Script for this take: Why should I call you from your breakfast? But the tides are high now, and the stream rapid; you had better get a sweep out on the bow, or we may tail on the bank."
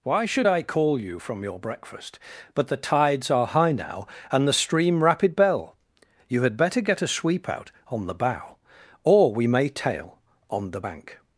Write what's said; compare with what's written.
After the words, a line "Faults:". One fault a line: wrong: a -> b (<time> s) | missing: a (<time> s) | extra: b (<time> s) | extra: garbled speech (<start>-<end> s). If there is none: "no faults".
Why should I call you from your breakfast? But the tides are high now, and the stream rapid; bell you had better get a sweep out on the bow, or we may tail on the bank."
Faults:
extra: bell (5.3 s)